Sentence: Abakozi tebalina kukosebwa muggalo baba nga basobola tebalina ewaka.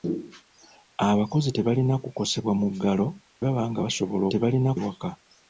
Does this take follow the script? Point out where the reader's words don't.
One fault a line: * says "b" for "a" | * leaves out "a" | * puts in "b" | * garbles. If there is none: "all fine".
all fine